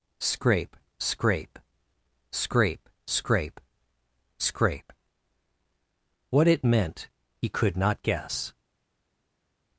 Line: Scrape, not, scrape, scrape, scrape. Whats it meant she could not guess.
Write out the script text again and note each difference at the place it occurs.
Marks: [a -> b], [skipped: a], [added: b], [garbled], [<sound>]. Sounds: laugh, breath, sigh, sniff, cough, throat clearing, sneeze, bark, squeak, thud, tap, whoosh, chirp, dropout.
Scrape, [not, -> scrape] scrape, scrape, scrape. [Whats -> What] it meant [she -> he] could not guess.